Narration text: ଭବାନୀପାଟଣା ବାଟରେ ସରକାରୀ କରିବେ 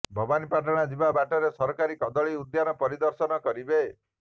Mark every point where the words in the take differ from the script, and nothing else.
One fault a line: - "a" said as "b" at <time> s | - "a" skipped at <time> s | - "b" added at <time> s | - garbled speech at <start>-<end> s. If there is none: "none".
- "ଯିବା" added at 0.9 s
- "କଦଳୀ ଉଦ୍ୟାନ ପରିଦର୍ଶନ" added at 2.0 s